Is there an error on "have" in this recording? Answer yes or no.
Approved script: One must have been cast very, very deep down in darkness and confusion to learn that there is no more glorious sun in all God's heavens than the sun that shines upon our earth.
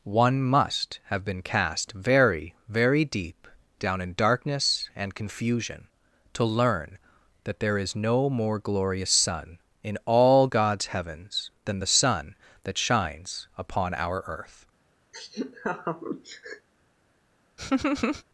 no